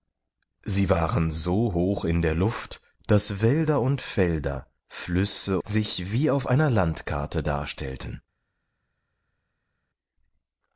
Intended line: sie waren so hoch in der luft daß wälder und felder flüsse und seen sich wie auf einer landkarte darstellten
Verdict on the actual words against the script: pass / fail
fail